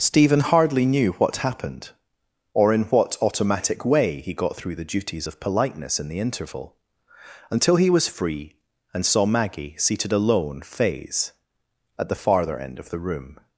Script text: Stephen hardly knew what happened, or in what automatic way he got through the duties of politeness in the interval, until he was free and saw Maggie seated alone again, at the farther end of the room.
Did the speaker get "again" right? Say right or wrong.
wrong